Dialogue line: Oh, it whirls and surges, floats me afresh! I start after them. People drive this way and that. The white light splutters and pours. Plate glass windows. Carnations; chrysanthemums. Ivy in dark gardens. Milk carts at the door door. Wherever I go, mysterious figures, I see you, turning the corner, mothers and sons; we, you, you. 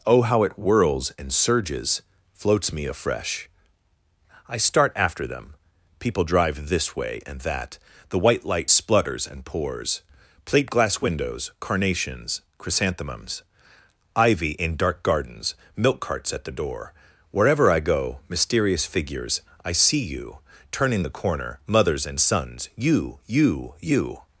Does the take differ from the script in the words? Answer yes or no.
yes